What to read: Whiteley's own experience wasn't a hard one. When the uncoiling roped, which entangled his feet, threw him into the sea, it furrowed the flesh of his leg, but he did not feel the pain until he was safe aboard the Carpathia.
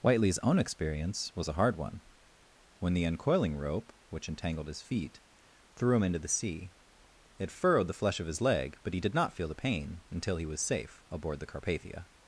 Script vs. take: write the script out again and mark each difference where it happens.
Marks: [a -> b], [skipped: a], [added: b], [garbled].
Whiteley's own experience [wasn't -> was] a hard one. When the uncoiling [roped, -> rope] which entangled his feet, threw him into the sea, it furrowed the flesh of his leg, but he did not feel the pain until he was safe aboard the Carpathia.